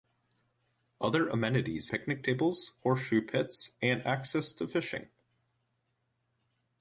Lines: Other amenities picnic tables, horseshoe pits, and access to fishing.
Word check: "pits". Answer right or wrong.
right